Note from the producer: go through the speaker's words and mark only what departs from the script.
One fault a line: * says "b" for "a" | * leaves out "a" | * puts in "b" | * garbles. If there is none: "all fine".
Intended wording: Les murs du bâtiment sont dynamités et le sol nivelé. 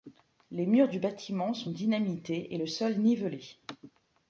all fine